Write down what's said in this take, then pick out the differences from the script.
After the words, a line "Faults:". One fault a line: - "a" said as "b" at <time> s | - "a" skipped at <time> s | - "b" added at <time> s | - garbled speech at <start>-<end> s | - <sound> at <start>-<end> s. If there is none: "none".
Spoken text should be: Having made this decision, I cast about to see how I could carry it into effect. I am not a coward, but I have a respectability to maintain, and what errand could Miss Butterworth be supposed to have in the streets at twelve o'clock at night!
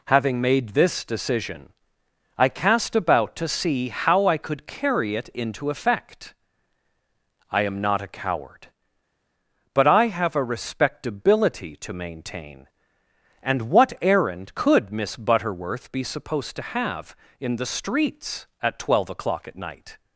Having made this decision, I cast about to see how I could carry it into effect. I am not a coward, but I have a respectability to maintain, and what errand could Miss Butterworth be supposed to have in the streets at twelve o'clock at night!
Faults:
none